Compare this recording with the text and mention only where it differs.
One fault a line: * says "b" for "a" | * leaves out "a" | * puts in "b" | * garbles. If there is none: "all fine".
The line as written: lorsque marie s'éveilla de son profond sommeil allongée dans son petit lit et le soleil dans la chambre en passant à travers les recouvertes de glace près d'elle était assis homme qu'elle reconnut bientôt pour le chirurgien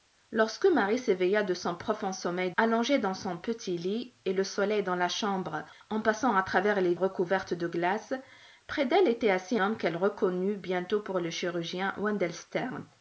all fine